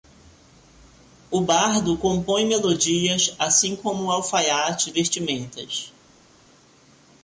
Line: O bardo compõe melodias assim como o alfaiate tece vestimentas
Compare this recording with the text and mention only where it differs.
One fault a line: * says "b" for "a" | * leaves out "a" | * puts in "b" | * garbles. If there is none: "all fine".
* leaves out "tece"